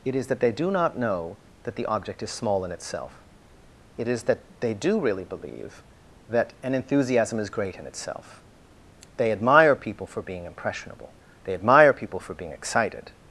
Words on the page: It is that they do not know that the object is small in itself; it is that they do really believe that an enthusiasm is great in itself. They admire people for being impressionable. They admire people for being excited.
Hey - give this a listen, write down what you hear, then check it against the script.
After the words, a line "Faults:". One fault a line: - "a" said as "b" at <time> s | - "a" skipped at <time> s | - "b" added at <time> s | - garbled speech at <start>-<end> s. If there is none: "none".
It is that they do not know that the object is small in itself; it is that they do really believe that an enthusiasm is great in itself. They admire people for being impressionable. They admire people for being excited.
Faults:
none